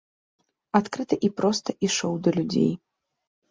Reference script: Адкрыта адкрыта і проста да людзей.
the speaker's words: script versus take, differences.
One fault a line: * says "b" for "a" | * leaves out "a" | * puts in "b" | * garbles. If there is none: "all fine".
* leaves out "адкрыта"
* puts in "ішоў"